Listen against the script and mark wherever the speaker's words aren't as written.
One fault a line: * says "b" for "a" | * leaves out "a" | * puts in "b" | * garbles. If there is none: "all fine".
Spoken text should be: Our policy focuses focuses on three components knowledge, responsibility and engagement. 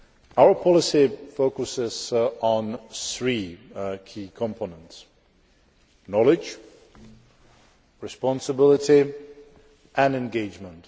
* leaves out "focuses"
* puts in "key"